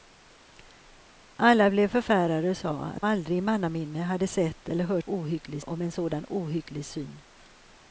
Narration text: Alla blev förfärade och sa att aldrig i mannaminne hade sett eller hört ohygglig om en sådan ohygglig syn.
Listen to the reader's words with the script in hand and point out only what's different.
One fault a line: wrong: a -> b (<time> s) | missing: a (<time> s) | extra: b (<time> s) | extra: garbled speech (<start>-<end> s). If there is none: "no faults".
no faults